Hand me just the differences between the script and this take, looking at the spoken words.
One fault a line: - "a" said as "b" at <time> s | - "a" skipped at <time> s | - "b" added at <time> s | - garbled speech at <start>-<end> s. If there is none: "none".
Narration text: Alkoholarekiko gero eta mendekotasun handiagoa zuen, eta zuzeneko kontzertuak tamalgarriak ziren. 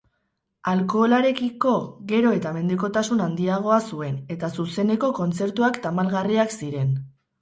none